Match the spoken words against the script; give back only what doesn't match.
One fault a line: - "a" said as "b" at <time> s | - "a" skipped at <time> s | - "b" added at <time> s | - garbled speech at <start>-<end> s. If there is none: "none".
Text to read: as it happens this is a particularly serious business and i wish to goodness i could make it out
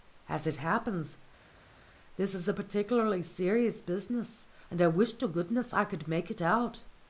none